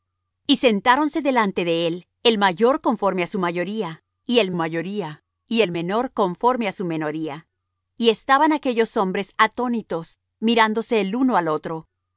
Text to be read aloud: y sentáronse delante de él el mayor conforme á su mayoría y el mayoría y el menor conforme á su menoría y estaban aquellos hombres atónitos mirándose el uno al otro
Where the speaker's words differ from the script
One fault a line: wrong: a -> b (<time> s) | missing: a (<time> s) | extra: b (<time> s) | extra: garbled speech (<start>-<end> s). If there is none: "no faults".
no faults